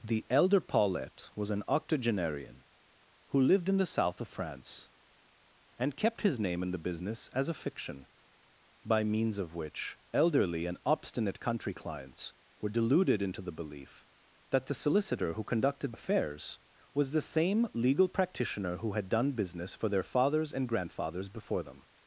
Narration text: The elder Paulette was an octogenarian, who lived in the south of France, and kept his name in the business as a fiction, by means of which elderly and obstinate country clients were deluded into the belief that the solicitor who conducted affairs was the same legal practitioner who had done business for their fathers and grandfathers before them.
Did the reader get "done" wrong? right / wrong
right